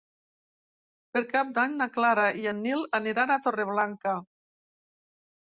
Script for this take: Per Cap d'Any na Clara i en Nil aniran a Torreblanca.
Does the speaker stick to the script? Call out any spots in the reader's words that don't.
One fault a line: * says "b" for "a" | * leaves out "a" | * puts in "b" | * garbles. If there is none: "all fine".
all fine